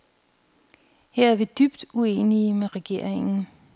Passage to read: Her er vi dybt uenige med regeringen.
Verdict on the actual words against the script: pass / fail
pass